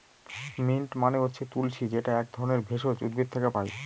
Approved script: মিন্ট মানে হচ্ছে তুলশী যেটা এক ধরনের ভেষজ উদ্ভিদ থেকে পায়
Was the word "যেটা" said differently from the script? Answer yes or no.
no